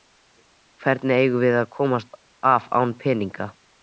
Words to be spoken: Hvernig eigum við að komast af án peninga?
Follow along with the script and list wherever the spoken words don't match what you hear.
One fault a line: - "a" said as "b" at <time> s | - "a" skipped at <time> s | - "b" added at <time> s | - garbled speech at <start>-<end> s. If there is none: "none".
none